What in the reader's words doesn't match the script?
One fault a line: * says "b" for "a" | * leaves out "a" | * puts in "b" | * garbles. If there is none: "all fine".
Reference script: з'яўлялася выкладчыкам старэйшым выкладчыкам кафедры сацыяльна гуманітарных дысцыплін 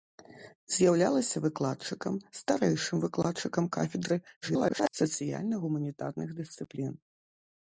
* garbles